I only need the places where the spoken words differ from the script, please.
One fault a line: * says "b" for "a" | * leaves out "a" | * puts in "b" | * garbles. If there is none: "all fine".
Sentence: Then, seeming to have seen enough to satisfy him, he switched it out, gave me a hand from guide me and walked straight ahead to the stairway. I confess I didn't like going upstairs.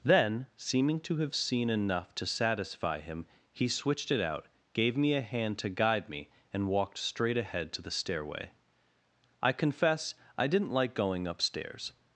* says "to" for "from"